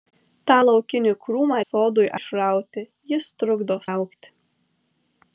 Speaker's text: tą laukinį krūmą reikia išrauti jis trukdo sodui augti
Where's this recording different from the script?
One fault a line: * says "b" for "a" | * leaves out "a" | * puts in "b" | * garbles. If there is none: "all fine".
* says "sodui" for "reikia"
* leaves out "sodui"